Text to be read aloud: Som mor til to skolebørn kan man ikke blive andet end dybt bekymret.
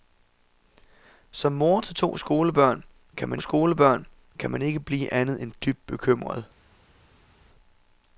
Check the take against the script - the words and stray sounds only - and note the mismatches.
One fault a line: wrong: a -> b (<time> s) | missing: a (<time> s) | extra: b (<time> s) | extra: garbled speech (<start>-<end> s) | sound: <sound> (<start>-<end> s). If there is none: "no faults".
extra: skolebørn kan man (3.4 s)